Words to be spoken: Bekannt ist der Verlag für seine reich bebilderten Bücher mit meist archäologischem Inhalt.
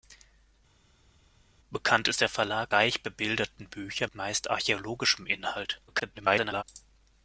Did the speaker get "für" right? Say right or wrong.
wrong